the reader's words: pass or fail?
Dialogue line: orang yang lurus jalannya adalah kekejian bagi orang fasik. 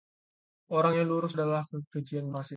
fail